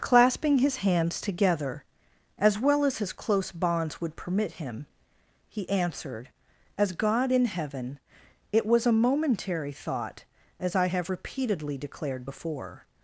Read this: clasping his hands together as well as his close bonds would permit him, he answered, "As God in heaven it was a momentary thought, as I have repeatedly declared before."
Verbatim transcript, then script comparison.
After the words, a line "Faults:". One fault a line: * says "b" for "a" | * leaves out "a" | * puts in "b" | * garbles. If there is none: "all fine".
clasping his hands together as well as his close bonds would permit him, he answered, "As God in heaven it was a momentary thought, as I have repeatedly declared before."
Faults:
all fine